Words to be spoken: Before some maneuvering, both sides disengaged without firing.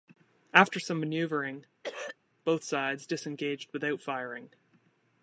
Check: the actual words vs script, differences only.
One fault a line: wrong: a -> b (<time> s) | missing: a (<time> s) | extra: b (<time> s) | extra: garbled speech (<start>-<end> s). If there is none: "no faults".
wrong: Before -> After (0.5 s)